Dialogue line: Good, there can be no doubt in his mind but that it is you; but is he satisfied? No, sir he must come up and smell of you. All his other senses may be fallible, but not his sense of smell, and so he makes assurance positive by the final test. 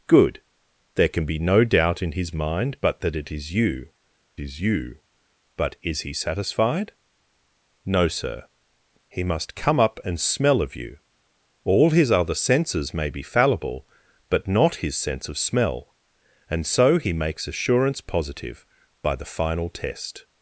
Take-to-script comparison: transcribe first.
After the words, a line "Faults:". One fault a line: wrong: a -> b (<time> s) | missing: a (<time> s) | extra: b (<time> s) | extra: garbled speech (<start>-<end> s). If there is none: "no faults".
Good, there can be no doubt in his mind but that it is you is you; but is he satisfied? No, sir he must come up and smell of you. All his other senses may be fallible, but not his sense of smell, and so he makes assurance positive by the final test.
Faults:
extra: is you (4.4 s)